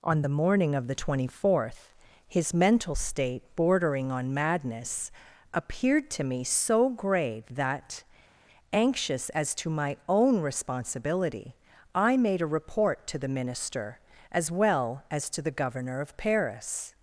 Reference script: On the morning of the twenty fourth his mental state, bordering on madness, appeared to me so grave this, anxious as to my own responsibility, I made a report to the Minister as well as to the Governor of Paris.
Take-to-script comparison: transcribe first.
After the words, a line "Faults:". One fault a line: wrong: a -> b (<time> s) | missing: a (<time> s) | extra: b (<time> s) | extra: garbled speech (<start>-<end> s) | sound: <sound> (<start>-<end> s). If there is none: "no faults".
On the morning of the twenty fourth his mental state, bordering on madness, appeared to me so grave that, anxious as to my own responsibility, I made a report to the Minister as well as to the Governor of Paris.
Faults:
wrong: this -> that (7.5 s)